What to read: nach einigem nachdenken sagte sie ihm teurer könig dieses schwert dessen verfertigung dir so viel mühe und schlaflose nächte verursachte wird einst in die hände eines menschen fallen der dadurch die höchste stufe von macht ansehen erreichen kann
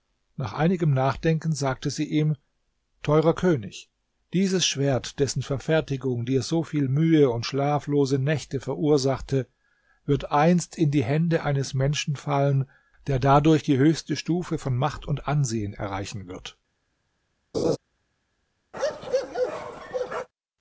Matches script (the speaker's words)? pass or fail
fail